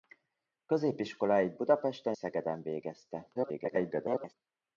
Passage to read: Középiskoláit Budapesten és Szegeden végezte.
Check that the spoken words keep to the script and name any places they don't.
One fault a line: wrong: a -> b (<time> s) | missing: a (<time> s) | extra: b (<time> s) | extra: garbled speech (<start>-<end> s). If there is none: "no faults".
missing: és (2.2 s)
extra: garbled speech (3.3-4.3 s)